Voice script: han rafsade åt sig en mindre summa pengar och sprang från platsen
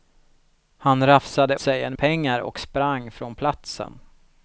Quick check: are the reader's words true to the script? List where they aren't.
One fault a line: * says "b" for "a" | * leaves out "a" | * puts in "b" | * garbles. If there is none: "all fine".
* leaves out "åt"
* leaves out "mindre summa"